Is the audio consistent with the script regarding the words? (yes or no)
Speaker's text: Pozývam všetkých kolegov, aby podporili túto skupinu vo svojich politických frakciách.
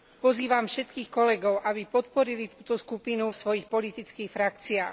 no